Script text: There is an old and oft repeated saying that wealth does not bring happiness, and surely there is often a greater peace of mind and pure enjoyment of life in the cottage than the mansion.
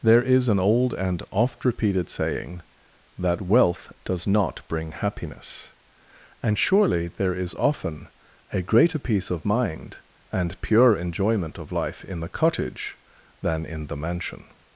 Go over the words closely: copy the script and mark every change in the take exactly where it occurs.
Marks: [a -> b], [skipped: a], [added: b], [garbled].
There is an old and oft repeated saying that wealth does not bring happiness, and surely there is often a greater peace of mind and pure enjoyment of life in the cottage than [added: in] the mansion.